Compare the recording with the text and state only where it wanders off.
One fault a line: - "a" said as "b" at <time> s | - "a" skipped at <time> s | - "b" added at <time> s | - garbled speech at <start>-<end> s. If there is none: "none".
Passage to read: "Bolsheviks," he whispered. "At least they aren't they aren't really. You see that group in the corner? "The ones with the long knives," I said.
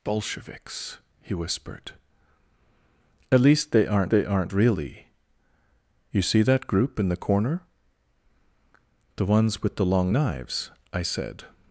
none